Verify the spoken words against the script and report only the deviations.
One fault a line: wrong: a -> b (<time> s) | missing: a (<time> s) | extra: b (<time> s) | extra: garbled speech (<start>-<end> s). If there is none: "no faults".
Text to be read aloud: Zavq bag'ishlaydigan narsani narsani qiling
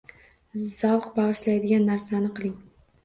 missing: narsani (2.3 s)